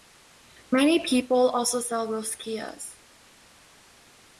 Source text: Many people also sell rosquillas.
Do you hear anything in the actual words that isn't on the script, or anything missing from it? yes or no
no